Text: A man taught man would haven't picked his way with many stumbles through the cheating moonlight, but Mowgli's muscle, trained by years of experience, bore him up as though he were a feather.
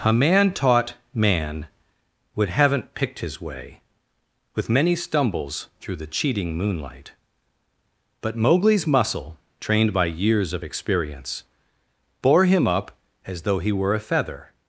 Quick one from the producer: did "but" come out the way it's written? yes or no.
yes